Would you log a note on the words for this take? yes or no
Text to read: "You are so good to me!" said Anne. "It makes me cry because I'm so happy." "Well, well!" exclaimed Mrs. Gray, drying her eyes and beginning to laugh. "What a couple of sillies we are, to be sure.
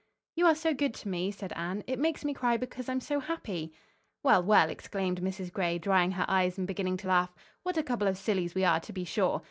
no